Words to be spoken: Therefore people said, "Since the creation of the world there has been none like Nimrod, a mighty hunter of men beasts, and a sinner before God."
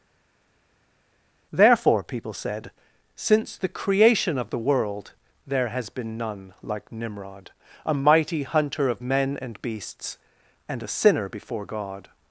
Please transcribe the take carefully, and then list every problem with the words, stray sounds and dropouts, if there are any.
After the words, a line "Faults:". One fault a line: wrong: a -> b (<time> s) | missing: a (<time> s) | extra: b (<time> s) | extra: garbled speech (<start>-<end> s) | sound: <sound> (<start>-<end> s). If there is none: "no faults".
Therefore people said, "Since the creation of the world there has been none like Nimrod, a mighty hunter of men and beasts, and a sinner before God."
Faults:
extra: and (9.4 s)